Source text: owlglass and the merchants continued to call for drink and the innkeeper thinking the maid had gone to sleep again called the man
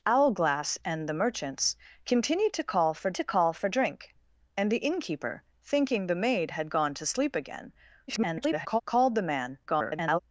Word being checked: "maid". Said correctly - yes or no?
yes